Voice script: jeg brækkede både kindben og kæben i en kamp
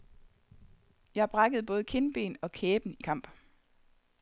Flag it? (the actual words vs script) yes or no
yes